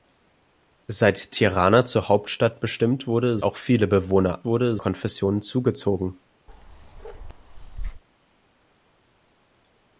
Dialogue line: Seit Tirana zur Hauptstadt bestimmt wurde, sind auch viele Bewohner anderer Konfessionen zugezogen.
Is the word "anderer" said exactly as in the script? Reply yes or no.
no